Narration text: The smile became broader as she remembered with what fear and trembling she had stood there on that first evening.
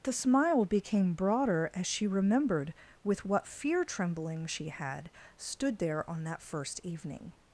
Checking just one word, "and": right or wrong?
wrong